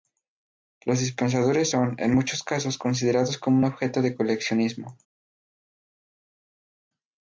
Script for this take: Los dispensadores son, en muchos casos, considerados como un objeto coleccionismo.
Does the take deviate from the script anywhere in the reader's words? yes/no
yes